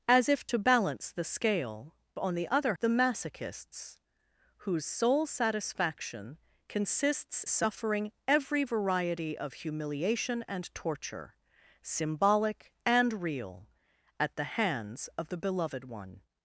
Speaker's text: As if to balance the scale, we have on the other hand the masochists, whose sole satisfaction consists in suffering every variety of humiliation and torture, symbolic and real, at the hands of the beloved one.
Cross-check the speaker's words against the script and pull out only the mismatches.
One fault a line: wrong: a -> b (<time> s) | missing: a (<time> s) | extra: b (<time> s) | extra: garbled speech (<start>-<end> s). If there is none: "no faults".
missing: we have (1.9 s)
missing: hand (2.8 s)
missing: in (7.4 s)